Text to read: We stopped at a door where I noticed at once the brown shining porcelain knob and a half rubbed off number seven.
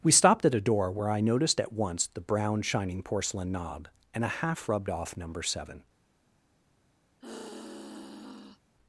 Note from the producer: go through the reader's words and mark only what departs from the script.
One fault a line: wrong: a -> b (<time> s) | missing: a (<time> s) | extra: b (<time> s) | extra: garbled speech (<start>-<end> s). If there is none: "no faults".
no faults